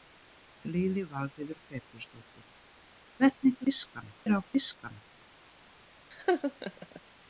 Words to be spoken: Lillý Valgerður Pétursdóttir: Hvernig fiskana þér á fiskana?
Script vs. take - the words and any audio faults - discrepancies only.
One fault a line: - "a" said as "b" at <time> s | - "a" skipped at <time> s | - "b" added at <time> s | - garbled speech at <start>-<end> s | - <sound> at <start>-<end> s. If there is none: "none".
- laugh at 6.1-7.0 s